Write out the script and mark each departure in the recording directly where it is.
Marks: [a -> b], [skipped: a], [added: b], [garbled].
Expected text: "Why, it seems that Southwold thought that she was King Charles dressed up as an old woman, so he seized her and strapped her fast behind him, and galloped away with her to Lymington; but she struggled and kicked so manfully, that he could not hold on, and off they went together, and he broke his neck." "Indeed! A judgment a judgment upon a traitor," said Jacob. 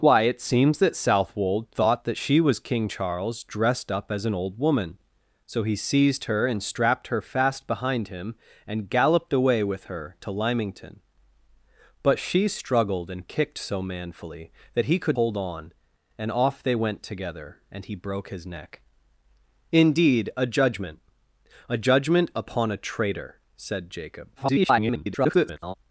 "Why, it seems that Southwold thought that she was King Charles dressed up as an old woman, so he seized her and strapped her fast behind him, and galloped away with her to Lymington; but she struggled and kicked so manfully, that he could [skipped: not] hold on, and off they went together, and he broke his neck." "Indeed! A judgment a judgment upon a traitor," said Jacob. [garbled]